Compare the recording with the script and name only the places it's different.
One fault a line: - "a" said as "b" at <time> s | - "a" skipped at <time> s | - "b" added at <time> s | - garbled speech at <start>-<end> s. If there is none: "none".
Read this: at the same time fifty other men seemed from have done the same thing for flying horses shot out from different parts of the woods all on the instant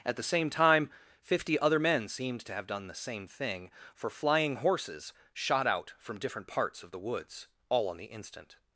- "from" said as "to" at 2.4 s